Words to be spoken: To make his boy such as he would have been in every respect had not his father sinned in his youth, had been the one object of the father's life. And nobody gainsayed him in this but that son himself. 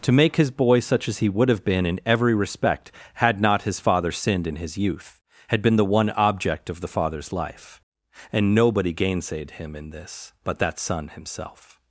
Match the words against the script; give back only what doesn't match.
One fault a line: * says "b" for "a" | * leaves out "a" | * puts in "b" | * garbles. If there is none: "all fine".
all fine